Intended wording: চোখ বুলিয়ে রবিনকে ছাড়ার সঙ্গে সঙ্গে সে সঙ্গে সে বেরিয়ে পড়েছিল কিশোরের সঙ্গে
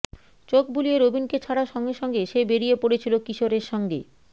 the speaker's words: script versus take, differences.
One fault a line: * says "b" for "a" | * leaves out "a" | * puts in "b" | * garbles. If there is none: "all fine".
* leaves out "সঙ্গে সে"